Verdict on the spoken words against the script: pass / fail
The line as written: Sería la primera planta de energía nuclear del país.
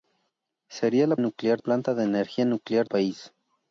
fail